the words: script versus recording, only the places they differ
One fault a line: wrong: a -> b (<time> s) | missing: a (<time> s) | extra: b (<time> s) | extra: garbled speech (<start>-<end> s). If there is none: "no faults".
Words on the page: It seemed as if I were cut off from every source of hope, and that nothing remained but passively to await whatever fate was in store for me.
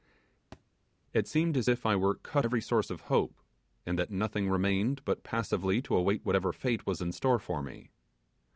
missing: off from (2.5 s)